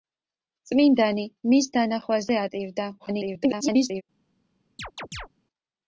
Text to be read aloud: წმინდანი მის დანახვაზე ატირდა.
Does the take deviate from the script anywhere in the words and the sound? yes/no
yes